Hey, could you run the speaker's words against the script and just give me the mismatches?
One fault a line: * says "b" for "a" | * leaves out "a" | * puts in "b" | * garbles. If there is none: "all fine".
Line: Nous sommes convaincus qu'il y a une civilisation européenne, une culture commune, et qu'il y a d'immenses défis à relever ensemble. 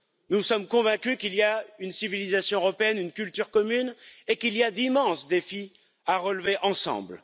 all fine